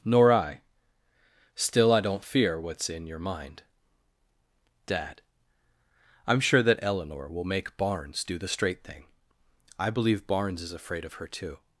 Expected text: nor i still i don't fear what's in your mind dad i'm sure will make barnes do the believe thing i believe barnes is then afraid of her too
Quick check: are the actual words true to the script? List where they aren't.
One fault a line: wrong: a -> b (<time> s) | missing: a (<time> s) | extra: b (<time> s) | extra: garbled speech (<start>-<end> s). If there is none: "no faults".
extra: that eleanor (6.6 s)
wrong: believe -> straight (8.5 s)
missing: then (10.7 s)